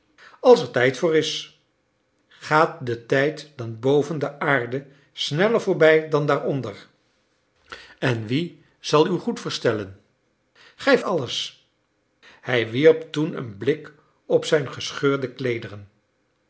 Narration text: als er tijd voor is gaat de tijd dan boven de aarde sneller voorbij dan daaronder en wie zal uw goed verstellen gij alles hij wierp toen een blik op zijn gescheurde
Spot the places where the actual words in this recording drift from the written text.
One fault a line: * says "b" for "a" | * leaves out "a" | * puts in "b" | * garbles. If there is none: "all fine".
all fine